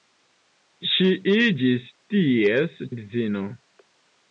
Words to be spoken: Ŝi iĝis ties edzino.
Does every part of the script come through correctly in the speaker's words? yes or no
yes